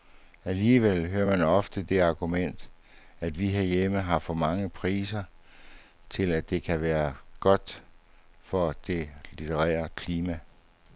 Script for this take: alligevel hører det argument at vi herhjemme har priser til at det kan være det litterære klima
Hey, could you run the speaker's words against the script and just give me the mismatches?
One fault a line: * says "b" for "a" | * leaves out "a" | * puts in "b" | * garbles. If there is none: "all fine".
* puts in "man ofte"
* puts in "for mange"
* puts in "godt for"